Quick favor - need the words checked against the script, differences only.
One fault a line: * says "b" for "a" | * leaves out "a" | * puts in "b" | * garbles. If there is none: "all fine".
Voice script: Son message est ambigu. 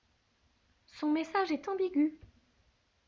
all fine